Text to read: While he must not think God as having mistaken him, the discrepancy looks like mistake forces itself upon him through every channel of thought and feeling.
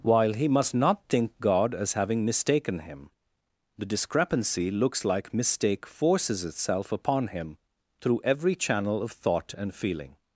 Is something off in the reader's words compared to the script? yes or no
no